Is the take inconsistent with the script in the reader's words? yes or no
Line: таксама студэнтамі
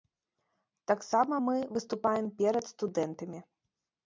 yes